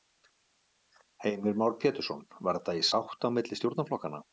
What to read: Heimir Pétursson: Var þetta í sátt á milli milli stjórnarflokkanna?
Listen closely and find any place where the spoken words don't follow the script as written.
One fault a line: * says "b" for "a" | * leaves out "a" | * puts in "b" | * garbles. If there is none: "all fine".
* puts in "Már"
* leaves out "milli"